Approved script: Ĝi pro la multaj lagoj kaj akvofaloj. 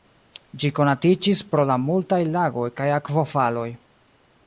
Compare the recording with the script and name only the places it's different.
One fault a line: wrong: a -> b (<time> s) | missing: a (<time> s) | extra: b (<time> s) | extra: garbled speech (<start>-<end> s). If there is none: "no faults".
extra: konatiĝis (0.8 s)